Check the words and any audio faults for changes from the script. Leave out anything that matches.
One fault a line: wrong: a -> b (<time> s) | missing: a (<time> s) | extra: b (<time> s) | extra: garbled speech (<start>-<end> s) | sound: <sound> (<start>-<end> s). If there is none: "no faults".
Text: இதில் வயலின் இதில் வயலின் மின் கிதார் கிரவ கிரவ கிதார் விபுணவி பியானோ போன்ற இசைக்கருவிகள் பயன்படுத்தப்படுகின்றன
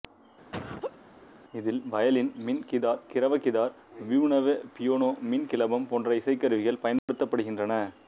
sound: laugh (0.5-1.0 s)
missing: இதில் வயலின் (2.3 s)
missing: கிரவ (3.4 s)
extra: மின் கிளபம் (5.3 s)
sound: dropout (7.0-7.1 s)